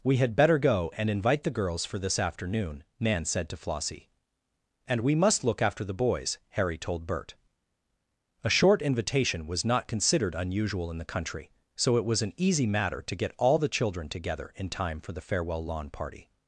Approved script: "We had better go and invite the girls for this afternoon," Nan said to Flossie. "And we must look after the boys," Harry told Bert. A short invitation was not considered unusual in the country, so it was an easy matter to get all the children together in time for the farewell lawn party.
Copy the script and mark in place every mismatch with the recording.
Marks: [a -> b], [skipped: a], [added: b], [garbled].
"We had better go and invite the girls for this afternoon," Nan said to Flossie. "And we must look after the boys," Harry told Bert. A short invitation was not considered unusual in the country, so it was an easy matter to get all the children together in time for the farewell lawn party.